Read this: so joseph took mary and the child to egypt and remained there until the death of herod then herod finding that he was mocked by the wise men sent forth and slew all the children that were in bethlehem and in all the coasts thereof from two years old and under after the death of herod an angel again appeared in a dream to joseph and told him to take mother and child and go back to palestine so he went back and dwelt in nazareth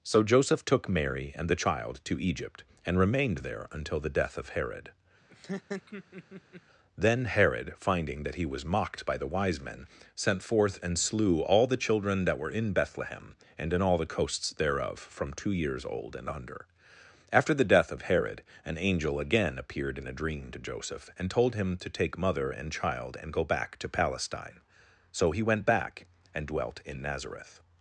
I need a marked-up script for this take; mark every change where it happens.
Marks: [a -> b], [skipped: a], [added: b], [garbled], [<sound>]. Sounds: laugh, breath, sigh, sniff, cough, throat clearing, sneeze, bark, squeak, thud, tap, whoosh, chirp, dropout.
so joseph took mary and the child to egypt and remained there until the death of herod [laugh] then herod finding that he was mocked by the wise men sent forth and slew all the children that were in bethlehem and in all the coasts thereof from two years old and under after the death of herod an angel again appeared in a dream to joseph and told him to take mother and child and go back to palestine so he went back and dwelt in nazareth